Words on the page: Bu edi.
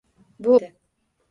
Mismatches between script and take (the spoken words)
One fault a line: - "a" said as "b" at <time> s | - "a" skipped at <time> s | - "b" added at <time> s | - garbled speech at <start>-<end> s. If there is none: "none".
none